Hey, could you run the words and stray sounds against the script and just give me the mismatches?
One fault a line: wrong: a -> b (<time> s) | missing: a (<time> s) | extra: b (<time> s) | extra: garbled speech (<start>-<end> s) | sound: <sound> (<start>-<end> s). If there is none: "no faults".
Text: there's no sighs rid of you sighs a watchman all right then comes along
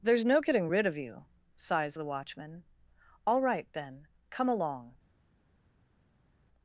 wrong: sighs -> getting (0.4 s)
wrong: a -> the (1.9 s)
wrong: comes -> come (4.3 s)